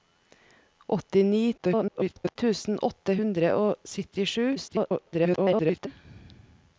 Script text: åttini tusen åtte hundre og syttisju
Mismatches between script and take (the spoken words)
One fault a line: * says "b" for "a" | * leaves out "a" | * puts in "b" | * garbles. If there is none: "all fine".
* garbles
* garbles